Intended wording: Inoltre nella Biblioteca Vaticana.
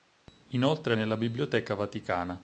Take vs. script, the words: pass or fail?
pass